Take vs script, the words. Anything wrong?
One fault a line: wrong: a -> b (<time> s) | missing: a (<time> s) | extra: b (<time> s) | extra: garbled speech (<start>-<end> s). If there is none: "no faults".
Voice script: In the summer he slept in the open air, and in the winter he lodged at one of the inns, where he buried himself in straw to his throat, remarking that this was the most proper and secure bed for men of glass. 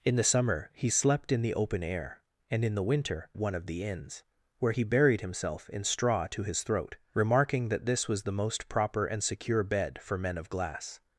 missing: he lodged at (3.3 s)